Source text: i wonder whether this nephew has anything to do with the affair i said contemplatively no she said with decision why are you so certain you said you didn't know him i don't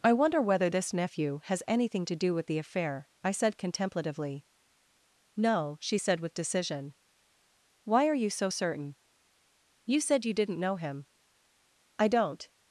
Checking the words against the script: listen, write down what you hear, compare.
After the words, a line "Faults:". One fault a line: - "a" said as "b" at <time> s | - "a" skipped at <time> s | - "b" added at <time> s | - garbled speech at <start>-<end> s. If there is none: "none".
i wonder whether this nephew has anything to do with the affair i said contemplatively no she said with decision why are you so certain you said you didn't know him i don't
Faults:
none